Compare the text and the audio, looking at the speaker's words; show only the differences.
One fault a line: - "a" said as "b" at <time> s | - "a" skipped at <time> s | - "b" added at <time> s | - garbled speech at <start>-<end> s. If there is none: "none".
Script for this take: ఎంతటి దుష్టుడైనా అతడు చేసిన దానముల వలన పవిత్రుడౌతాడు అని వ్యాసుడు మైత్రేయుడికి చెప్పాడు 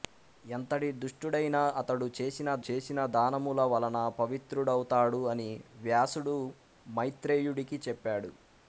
- "చేసిన" added at 2.7 s